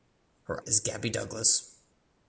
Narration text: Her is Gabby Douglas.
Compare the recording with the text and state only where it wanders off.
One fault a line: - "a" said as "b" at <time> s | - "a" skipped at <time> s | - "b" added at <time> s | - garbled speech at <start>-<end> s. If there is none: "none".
none